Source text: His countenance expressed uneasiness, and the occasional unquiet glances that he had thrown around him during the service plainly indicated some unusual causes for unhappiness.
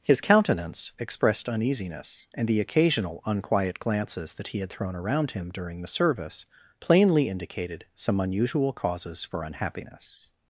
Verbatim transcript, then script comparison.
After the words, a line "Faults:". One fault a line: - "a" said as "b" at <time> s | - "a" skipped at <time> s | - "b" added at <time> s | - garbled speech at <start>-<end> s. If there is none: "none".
His countenance expressed uneasiness, and the occasional unquiet glances that he had thrown around him during the service plainly indicated some unusual causes for unhappiness.
Faults:
none